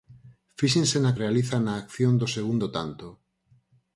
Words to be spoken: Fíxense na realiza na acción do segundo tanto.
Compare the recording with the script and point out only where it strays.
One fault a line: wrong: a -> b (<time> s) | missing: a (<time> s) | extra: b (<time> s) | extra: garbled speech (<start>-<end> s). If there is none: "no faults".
no faults